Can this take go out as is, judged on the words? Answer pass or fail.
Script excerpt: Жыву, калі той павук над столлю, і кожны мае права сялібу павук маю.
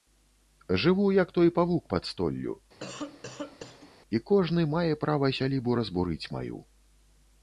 fail